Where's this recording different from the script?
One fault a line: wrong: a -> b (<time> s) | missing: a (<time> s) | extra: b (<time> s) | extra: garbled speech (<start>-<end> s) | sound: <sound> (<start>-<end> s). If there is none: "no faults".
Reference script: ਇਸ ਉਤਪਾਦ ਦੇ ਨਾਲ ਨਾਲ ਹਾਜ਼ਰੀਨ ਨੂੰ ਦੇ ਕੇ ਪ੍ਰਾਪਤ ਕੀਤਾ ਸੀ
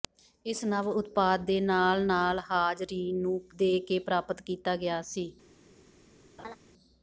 extra: ਨਵ (0.7 s)
extra: ਗਿਆ (4.8 s)
sound: laugh (6.4-6.6 s)